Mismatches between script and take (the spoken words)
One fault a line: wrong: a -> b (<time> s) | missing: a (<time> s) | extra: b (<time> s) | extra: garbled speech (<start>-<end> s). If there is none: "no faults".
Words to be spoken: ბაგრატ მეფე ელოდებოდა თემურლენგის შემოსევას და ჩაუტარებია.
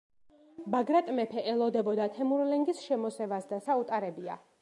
no faults